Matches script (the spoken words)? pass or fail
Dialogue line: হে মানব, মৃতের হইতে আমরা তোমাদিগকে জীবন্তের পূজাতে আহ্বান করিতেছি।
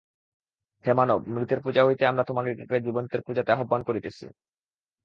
fail